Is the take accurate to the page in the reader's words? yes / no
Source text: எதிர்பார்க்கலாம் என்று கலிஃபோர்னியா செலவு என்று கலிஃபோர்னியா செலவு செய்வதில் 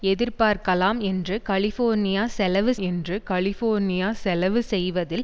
yes